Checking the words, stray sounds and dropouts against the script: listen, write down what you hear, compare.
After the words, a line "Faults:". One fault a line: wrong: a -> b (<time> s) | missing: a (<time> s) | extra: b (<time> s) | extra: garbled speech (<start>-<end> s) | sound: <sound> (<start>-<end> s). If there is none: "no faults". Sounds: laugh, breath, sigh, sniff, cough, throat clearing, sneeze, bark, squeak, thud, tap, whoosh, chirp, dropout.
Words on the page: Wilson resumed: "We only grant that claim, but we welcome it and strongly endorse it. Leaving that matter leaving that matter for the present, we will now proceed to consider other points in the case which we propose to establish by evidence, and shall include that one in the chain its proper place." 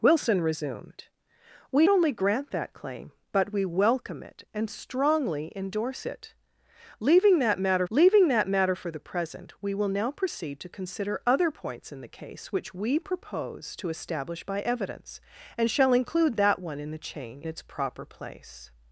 Wilson resumed: "We only grant that claim, but we welcome it and strongly endorse it. Leaving that matter leaving that matter for the present, we will now proceed to consider other points in the case which we propose to establish by evidence, and shall include that one in the chain its proper place."
Faults:
no faults